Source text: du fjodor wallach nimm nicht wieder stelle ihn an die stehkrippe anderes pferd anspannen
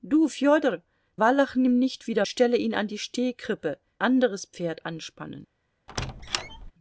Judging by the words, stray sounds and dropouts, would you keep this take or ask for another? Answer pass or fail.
fail